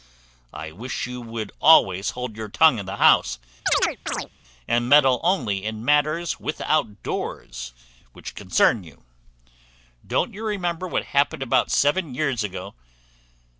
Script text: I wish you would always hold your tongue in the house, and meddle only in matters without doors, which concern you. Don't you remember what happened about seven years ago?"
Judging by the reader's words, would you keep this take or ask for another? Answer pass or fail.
pass